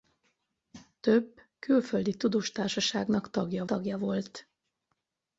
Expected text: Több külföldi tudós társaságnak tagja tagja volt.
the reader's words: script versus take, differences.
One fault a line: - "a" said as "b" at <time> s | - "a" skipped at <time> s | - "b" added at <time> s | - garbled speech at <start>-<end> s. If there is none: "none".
none